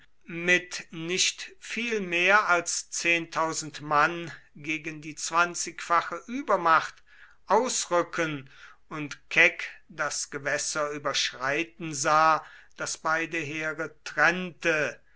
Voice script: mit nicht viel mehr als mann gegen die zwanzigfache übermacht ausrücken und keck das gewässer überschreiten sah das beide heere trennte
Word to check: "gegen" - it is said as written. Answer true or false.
true